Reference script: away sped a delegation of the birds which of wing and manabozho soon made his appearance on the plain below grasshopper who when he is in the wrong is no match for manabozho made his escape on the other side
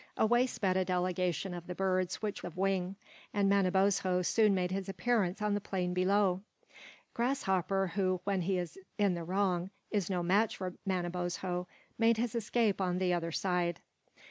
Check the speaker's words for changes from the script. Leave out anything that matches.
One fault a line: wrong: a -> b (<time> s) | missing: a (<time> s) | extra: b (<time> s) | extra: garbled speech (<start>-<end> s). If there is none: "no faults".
no faults